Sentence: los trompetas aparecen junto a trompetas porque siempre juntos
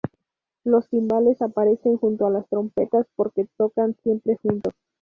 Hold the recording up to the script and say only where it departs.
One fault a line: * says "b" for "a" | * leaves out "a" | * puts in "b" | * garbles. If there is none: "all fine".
* says "timbales" for "trompetas"
* puts in "las"
* puts in "tocan"